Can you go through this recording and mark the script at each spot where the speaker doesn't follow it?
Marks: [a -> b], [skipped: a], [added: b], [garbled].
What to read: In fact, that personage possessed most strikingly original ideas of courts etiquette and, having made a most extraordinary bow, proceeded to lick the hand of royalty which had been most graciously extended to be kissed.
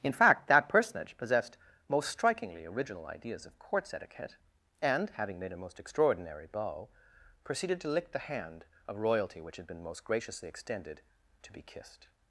In fact, that personage possessed most strikingly original ideas of courts etiquette and, having made a most extraordinary bow, proceeded to lick the hand of royalty which had been most graciously extended to be kissed.